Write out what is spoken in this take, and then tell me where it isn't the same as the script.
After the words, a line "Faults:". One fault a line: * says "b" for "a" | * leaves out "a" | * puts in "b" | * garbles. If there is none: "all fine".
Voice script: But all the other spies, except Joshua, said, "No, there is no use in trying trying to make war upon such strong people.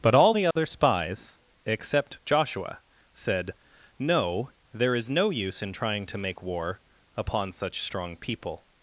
But all the other spies, except Joshua, said, "No, there is no use in trying to make war upon such strong people.
Faults:
* leaves out "trying"